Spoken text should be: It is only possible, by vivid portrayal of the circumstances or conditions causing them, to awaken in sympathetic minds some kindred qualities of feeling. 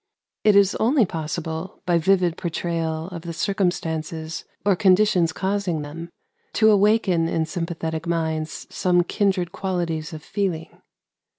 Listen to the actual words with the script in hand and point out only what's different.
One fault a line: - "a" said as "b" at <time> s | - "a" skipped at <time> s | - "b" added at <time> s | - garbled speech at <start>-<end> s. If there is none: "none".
none